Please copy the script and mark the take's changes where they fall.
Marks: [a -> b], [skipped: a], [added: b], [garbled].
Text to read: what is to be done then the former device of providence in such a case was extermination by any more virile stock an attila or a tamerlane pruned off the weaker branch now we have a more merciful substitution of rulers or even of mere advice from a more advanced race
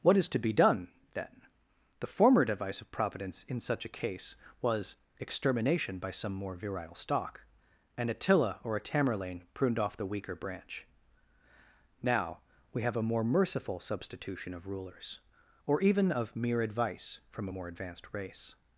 what is to be done then the former device of providence in such a case was extermination by [any -> some] more virile stock an attila or a tamerlane pruned off the weaker branch now we have a more merciful substitution of rulers or even of mere advice from a more advanced race